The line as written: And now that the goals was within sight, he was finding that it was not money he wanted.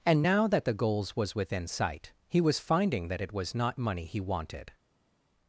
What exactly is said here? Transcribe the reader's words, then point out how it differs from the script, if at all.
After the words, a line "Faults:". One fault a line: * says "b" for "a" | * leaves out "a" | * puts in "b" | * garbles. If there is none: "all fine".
And now that the goals was within sight, he was finding that it was not money he wanted.
Faults:
all fine